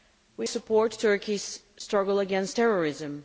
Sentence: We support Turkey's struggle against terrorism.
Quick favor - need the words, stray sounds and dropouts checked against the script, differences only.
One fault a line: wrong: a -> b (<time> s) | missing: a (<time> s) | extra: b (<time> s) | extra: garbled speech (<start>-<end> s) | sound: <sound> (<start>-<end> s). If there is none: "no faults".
no faults